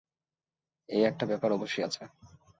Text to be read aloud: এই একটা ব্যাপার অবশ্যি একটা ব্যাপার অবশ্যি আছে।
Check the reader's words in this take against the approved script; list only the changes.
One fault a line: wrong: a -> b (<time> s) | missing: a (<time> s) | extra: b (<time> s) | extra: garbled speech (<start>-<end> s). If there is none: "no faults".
missing: একটা ব্যাপার অবশ্যি (1.8 s)